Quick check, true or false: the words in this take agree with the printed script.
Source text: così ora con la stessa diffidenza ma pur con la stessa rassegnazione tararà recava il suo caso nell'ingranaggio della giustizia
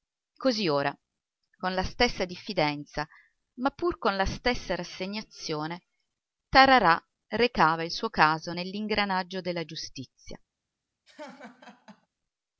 true